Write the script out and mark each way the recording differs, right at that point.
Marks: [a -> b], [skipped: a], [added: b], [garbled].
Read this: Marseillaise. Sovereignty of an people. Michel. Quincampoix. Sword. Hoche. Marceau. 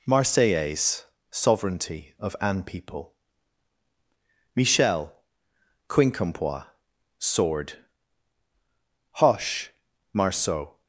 Marseillaise. Sovereignty of an people. Michel. Quincampoix. Sword. Hoche. Marceau.